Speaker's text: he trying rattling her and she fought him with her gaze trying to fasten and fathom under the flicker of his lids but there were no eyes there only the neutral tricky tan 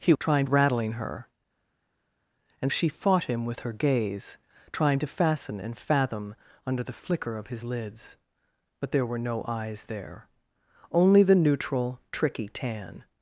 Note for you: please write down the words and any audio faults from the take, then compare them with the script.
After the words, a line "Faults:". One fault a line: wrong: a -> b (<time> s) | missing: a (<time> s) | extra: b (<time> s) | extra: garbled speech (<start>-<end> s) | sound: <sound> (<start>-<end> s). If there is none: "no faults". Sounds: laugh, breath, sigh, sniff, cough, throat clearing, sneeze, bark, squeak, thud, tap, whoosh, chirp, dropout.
he trying rattling her and she fought him with her gaze trying to fasten and fathom under the flicker of his lids but there were no eyes there only the neutral tricky tan
Faults:
no faults